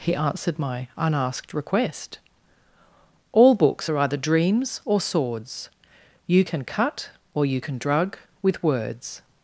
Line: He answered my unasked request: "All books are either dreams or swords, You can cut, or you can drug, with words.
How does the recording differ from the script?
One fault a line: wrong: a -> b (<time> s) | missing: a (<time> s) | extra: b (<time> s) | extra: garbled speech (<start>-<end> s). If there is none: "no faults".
no faults